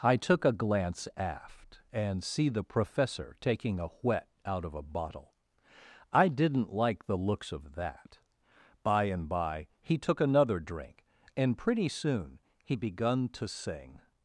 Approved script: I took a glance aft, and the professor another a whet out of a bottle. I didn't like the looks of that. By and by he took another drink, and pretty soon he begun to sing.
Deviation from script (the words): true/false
true